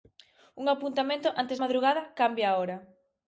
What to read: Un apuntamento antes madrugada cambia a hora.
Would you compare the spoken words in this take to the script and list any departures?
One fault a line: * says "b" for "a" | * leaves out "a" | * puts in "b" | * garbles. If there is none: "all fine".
all fine